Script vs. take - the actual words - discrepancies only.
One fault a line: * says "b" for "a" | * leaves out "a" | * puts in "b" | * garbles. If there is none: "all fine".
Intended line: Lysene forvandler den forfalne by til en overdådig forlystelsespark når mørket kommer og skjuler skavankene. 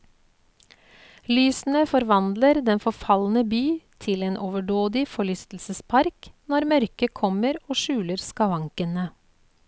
all fine